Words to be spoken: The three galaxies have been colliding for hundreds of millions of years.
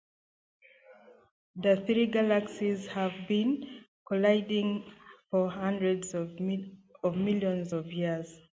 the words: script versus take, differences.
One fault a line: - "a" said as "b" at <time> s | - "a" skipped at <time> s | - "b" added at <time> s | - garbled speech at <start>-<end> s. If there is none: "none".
none